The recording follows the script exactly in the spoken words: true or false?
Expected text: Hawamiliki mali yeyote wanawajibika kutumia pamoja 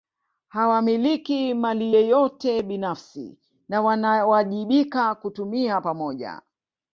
false